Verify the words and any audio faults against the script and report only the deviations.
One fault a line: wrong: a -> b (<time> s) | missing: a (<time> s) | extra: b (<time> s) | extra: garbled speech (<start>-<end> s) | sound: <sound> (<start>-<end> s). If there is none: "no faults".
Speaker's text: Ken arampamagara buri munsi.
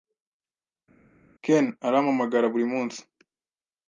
no faults